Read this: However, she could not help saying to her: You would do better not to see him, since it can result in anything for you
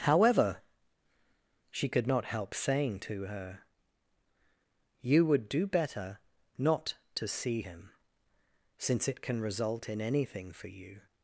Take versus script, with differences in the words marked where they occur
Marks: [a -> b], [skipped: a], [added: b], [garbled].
However, she could not help saying to her: You would do better not to see him, since it can result in anything for you